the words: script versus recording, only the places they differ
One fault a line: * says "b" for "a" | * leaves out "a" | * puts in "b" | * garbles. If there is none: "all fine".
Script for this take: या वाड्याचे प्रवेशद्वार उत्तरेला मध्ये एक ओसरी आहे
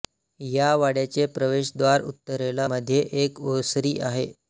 all fine